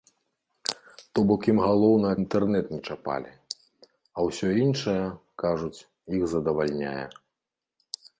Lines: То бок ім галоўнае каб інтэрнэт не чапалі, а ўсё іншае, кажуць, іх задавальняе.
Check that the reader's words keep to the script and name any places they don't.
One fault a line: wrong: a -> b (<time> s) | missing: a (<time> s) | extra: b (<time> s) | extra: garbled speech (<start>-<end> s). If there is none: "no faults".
missing: каб (2.1 s)